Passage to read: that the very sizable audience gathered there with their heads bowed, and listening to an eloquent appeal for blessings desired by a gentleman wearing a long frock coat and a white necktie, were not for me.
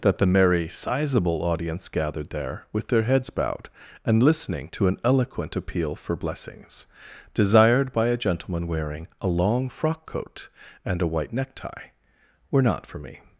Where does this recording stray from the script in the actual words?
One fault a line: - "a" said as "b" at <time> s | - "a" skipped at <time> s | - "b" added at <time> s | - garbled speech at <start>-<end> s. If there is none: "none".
- "very" said as "merry" at 0.2 s